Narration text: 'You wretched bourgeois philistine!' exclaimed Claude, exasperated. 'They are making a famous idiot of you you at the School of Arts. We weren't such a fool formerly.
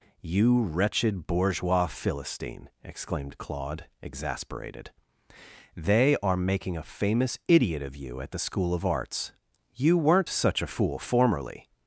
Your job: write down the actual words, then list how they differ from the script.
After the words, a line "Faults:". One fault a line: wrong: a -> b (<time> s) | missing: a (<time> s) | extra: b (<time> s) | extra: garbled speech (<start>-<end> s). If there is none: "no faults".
'You wretched bourgeois philistine!' exclaimed Claude, exasperated. 'They are making a famous idiot of you at the School of Arts. You weren't such a fool formerly.
Faults:
missing: you (8.2 s)
wrong: We -> You (9.7 s)